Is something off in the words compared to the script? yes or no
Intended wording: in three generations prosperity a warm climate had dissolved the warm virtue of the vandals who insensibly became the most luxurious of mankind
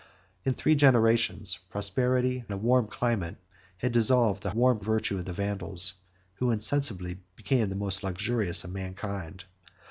no